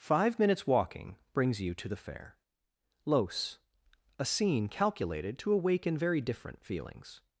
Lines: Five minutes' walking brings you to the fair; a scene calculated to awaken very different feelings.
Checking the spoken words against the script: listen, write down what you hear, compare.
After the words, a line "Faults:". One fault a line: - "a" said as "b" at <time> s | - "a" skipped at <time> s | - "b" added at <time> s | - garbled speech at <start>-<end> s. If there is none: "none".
Five minutes' walking brings you to the fair; los a scene calculated to awaken very different feelings.
Faults:
- "los" added at 3.0 s